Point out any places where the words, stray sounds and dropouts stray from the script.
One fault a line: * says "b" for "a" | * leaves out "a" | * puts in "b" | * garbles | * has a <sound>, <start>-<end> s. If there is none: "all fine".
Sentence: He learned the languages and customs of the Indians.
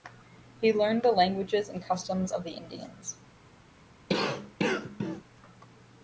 * has a cough, 4.1-5.2 s